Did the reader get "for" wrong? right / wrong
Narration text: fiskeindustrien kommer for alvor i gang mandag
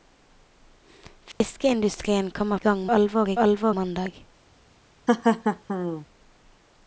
wrong